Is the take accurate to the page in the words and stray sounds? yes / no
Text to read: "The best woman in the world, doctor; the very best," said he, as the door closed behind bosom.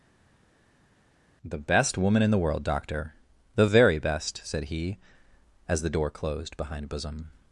yes